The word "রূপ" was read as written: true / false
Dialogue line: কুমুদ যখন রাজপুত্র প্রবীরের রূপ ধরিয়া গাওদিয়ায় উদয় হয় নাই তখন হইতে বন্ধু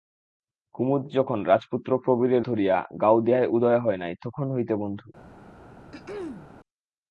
false